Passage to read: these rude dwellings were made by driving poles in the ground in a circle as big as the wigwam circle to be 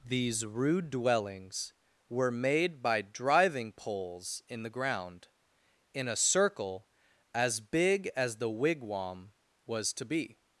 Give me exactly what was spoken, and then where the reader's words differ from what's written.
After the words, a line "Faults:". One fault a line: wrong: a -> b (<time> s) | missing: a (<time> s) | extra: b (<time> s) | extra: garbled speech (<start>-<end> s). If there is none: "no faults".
these rude dwellings were made by driving poles in the ground in a circle as big as the wigwam was to be
Faults:
wrong: circle -> was (9.7 s)